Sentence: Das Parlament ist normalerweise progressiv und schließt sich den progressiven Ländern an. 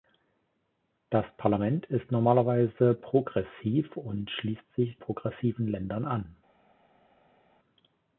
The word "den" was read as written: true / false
false